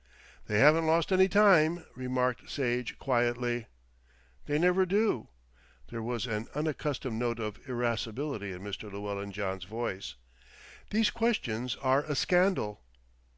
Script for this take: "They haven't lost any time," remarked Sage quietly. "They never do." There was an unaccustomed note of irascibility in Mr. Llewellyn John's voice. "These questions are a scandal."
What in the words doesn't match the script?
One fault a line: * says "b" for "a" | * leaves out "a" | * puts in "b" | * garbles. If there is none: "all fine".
all fine